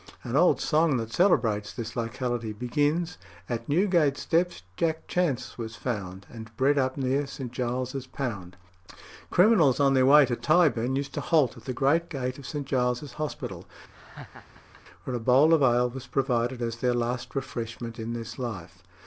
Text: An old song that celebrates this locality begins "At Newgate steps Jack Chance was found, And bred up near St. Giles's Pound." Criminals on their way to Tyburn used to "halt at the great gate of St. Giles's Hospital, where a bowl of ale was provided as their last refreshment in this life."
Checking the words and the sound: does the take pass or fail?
fail